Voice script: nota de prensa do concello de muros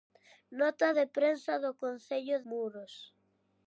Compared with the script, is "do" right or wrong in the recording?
right